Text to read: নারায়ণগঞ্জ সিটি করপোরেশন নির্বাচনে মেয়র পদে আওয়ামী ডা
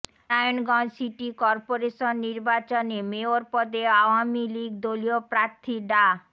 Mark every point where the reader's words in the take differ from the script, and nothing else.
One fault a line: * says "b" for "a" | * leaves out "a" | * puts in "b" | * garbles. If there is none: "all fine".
* puts in "লীগ দলীয় প্রার্থী"